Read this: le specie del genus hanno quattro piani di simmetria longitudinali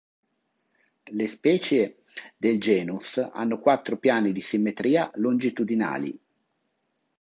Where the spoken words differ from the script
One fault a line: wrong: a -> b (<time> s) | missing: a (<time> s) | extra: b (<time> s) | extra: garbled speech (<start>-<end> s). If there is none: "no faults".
no faults